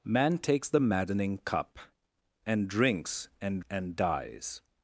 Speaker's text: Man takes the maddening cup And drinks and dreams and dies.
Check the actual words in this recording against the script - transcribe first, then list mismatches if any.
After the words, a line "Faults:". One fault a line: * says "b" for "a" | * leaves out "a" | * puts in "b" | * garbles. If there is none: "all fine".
Man takes the maddening cup And drinks and and dies.
Faults:
* leaves out "dreams"